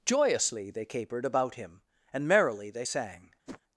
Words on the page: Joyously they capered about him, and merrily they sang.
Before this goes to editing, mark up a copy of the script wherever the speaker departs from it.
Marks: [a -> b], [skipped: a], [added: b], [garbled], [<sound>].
Joyously they capered about him, and merrily they sang. [whoosh]